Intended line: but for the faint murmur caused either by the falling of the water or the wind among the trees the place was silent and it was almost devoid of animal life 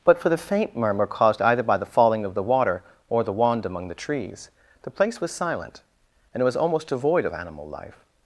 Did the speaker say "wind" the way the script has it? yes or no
no